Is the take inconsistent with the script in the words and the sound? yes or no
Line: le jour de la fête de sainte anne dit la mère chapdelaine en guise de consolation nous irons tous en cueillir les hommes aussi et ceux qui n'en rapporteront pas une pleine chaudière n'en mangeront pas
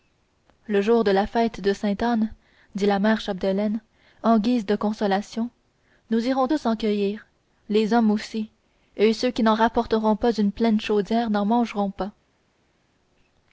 no